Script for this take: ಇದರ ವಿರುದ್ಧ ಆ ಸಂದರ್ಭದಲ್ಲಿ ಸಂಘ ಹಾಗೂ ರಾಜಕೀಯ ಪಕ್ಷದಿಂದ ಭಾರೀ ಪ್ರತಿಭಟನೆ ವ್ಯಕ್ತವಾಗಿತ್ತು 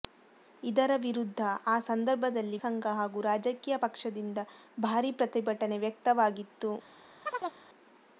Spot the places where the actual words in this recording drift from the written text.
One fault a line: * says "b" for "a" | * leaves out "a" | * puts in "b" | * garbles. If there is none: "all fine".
all fine